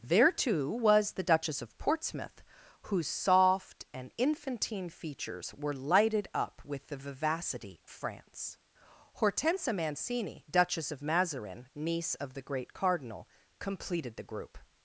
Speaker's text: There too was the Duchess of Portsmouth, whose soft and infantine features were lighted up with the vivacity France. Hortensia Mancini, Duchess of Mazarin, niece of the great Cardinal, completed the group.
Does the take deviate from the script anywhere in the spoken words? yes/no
no